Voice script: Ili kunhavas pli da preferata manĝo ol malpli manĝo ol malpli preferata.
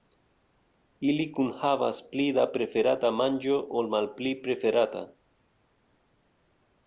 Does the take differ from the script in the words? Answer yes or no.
yes